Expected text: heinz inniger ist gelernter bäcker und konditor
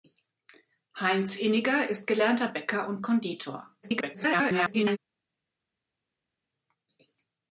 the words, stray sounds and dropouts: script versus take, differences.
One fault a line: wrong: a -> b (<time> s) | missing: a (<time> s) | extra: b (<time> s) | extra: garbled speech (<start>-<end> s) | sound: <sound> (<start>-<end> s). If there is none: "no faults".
extra: garbled speech (3.8-5.0 s)